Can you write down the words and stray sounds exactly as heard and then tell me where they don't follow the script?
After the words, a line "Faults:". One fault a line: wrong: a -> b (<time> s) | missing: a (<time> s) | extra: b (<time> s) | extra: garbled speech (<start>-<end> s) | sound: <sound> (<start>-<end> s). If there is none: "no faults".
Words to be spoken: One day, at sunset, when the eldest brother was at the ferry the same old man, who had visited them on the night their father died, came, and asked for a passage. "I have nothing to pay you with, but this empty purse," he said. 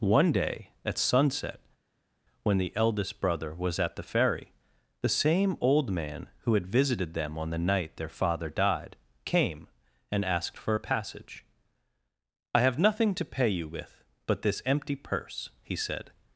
One day, at sunset, when the eldest brother was at the ferry the same old man, who had visited them on the night their father died, came, and asked for a passage. "I have nothing to pay you with, but this empty purse," he said.
Faults:
no faults